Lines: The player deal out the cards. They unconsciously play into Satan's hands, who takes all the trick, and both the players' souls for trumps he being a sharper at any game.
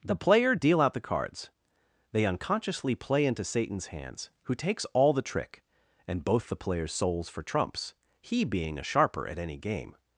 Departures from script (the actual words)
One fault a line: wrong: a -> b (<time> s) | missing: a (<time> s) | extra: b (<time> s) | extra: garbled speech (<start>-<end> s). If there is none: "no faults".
no faults